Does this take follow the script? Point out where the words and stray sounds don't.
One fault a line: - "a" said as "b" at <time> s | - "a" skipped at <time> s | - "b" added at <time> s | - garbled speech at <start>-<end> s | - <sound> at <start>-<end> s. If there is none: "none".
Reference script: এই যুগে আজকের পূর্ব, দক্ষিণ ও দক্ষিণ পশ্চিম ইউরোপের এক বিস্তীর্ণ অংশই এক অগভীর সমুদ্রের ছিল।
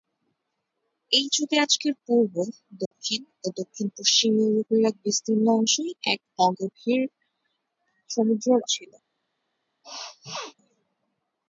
- dropout at 2.9-2.9 s
- sneeze at 9.8-10.5 s